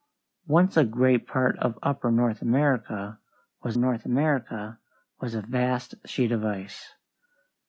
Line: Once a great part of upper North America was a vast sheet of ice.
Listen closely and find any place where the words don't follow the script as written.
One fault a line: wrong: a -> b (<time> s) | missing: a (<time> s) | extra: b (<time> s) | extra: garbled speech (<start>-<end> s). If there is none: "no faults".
extra: North America was (3.7 s)